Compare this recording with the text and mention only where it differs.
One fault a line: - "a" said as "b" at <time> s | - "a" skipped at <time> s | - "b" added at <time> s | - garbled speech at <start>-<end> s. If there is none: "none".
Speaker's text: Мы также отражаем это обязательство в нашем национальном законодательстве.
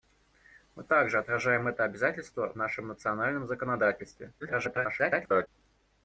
- garbled speech at 4.4-5.5 s